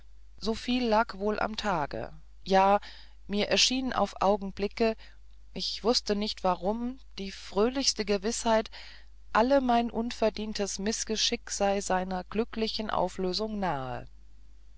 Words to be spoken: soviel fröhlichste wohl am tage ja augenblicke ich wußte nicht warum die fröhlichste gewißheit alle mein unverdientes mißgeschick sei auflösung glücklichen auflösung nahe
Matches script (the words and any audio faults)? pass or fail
fail